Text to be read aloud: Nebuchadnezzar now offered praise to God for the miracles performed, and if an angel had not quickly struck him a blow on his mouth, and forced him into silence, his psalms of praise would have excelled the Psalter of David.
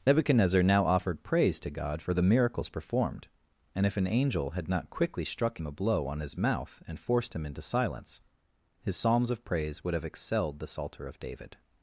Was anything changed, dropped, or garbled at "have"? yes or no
no